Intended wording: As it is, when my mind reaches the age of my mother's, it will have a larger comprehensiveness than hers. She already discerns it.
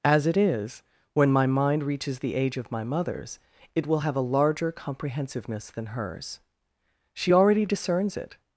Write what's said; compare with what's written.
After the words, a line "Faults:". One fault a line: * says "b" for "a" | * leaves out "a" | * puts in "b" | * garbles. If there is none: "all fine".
As it is, when my mind reaches the age of my mother's, it will have a larger comprehensiveness than hers. She already discerns it.
Faults:
all fine